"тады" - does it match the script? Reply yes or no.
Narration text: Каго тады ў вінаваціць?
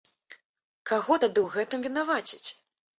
yes